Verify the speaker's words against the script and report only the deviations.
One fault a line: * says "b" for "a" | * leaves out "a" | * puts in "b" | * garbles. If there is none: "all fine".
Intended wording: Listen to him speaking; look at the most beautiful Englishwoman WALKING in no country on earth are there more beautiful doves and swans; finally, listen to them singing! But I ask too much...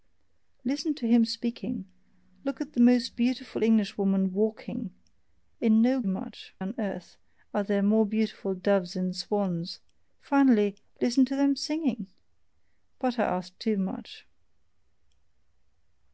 * says "much" for "country"